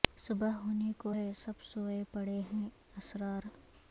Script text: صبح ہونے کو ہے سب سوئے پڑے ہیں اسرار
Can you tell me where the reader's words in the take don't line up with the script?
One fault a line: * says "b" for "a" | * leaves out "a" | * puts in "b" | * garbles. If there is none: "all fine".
all fine